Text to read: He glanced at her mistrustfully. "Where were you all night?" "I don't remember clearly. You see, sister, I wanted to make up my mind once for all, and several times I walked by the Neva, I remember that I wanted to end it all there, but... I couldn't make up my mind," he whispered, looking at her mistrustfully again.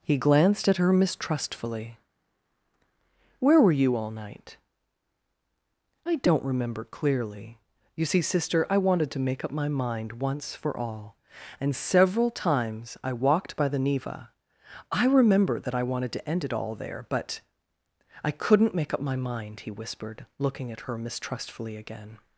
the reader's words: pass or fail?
pass